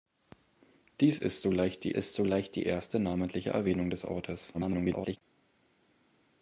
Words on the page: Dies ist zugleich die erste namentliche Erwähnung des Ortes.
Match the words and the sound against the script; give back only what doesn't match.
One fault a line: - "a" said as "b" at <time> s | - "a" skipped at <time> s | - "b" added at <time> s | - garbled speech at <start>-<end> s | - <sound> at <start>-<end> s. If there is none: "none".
- "ist zugleich die" added at 1.9 s
- garbled speech at 4.5-5.2 s